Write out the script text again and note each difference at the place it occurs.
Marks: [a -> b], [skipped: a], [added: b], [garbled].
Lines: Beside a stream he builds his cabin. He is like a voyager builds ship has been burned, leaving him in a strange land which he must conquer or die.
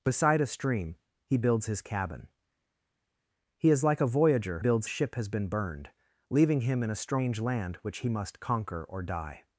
Beside a stream he builds his cabin. He is like a voyager builds ship has been burned, leaving him in a strange land which he must conquer or die.